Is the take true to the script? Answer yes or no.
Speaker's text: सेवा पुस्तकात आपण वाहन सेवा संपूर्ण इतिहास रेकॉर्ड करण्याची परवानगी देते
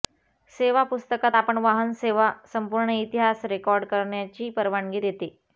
yes